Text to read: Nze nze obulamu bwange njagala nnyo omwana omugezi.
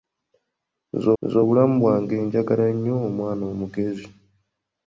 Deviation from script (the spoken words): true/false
false